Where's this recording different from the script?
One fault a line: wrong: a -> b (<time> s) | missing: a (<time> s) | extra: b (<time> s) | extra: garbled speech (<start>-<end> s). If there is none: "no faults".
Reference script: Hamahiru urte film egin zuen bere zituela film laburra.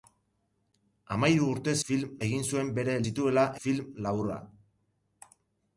no faults